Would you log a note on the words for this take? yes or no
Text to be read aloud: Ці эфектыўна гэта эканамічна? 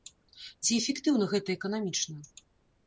no